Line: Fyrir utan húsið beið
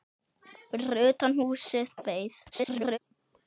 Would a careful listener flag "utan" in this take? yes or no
no